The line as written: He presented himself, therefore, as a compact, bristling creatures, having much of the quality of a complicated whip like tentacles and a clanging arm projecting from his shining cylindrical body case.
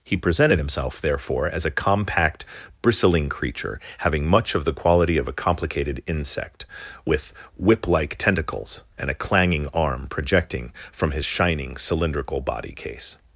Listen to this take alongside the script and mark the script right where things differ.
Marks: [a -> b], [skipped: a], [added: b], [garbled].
He presented himself, therefore, as a compact, bristling [creatures, -> creature] having much of the quality of a complicated [added: insect with] whip like tentacles and a clanging arm projecting from his shining cylindrical body case.